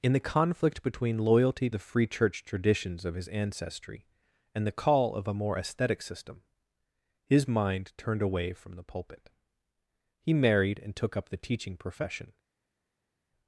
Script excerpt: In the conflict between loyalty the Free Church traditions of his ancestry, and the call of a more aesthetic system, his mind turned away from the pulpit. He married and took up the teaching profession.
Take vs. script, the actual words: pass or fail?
pass